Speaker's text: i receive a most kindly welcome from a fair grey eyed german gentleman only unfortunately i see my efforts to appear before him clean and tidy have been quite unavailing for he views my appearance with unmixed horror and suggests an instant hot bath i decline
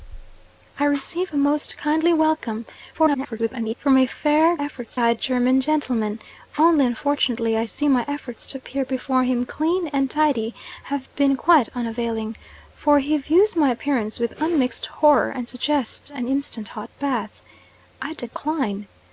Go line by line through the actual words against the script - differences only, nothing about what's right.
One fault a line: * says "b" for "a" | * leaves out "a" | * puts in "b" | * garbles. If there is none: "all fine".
* garbles
* says "efforts" for "grey"